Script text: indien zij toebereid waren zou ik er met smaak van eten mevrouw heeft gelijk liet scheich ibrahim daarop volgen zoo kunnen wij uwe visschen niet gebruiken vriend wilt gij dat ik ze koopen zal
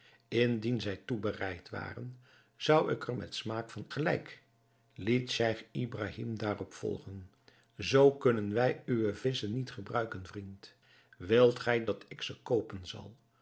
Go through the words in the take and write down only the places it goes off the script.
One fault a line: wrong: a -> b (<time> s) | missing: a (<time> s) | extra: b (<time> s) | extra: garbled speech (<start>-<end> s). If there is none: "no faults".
missing: eten mevrouw heeft (3.9 s)